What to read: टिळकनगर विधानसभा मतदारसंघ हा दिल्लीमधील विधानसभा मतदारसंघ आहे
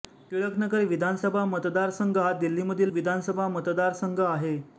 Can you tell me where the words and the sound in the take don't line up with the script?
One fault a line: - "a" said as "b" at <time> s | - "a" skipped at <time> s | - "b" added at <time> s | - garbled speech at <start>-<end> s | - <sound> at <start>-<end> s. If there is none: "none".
none